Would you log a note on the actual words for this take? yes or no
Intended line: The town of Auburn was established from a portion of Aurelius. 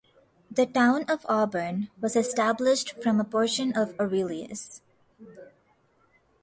no